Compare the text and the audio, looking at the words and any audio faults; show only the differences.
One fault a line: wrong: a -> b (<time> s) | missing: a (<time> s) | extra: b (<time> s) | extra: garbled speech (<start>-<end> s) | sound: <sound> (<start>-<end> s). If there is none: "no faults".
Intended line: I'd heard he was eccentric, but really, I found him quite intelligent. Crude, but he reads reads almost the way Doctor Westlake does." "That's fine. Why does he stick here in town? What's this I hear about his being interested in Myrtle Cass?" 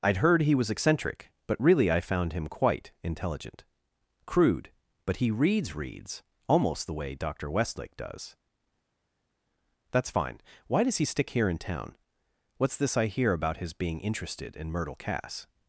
no faults